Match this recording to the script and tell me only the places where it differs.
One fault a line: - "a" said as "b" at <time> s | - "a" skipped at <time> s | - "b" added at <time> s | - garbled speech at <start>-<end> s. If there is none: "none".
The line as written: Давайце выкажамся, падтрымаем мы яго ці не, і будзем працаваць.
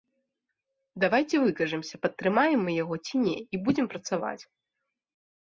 none